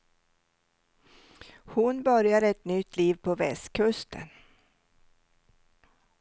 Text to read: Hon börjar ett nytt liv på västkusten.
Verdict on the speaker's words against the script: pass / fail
pass